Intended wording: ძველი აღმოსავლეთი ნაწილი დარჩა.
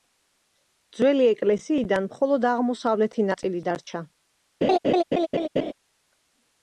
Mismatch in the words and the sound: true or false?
true